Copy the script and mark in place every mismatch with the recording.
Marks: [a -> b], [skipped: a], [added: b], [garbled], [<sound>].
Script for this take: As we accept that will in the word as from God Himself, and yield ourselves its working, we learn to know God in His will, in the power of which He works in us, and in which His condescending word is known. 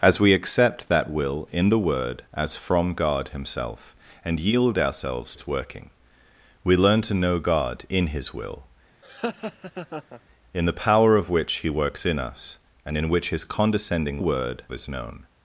As we accept that will in the word as from God Himself, and yield ourselves its working, we learn to know God in His will, [laugh] in the power of which He works in us, and in which His condescending word is known.